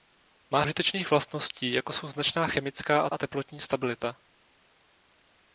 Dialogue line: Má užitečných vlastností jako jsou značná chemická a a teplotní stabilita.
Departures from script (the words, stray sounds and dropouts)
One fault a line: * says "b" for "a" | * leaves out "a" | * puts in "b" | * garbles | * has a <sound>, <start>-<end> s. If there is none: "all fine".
all fine